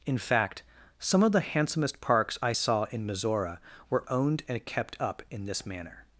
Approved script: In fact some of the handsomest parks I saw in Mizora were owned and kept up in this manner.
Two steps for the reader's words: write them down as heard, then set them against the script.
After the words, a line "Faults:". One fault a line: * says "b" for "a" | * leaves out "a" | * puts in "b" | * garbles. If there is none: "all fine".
In fact some of the handsomest parks I saw in Mizora were owned and kept up in this manner.
Faults:
all fine